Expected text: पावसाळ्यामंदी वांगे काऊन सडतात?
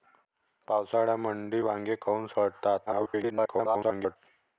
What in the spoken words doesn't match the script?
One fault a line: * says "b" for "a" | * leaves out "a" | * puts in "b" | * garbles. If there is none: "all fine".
* garbles